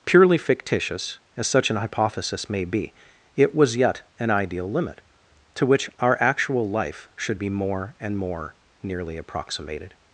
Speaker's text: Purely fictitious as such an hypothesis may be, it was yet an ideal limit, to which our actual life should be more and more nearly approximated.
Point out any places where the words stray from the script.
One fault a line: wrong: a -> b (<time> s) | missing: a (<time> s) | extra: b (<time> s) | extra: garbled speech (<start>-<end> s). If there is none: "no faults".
no faults